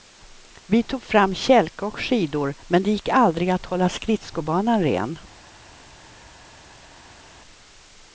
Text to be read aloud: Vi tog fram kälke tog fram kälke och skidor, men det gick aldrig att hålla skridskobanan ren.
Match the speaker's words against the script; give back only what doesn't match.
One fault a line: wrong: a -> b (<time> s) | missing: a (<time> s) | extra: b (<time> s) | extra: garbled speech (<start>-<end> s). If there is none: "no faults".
missing: tog fram kälke (1.9 s)